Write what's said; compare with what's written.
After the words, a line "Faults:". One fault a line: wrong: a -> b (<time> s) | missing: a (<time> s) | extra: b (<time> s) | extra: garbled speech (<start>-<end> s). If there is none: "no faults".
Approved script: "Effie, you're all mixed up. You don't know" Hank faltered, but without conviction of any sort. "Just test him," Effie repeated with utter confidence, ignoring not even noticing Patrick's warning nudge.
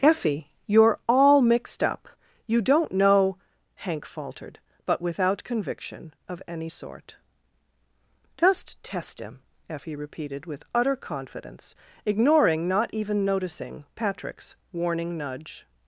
"Effie, you're all mixed up. You don't know" Hank faltered, but without conviction of any sort. "Just test him," Effie repeated with utter confidence, ignoring not even noticing Patrick's warning nudge.
Faults:
no faults